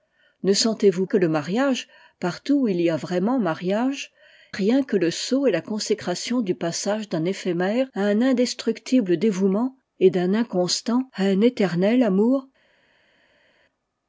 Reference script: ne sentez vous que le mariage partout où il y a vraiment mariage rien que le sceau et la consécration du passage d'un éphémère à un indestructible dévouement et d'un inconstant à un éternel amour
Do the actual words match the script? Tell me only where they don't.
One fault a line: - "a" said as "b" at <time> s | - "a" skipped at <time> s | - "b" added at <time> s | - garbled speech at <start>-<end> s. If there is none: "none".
none